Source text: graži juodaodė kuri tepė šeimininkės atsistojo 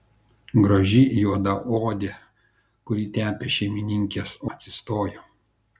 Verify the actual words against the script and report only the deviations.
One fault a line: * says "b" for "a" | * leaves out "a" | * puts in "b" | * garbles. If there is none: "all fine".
all fine